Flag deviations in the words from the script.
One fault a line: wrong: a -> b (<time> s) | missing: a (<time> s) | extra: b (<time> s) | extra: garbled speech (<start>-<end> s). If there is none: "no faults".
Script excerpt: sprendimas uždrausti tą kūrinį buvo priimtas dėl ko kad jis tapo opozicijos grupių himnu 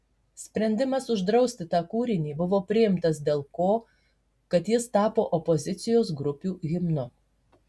no faults